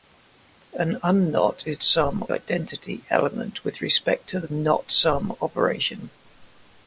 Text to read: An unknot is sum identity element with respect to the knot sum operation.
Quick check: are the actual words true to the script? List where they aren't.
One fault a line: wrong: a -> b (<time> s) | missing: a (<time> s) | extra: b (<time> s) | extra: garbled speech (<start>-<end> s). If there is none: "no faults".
no faults